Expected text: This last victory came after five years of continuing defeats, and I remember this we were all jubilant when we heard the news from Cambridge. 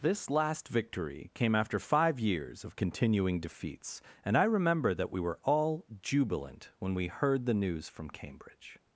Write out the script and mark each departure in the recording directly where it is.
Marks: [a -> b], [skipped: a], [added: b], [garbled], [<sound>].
This last victory came after five years of continuing defeats, and I remember [this -> that] we were all jubilant when we heard the news from Cambridge.